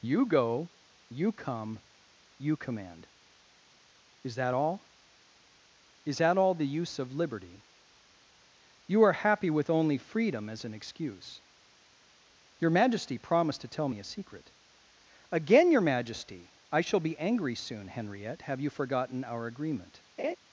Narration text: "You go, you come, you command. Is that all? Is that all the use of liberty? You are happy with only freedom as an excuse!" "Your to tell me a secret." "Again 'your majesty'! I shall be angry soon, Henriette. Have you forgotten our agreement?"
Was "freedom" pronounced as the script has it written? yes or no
yes